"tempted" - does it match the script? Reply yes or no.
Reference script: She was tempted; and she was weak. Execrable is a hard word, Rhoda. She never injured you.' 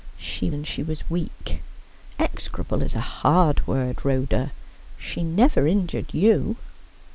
no